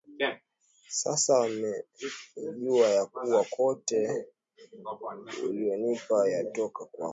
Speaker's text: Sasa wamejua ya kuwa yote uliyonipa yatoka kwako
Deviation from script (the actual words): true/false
false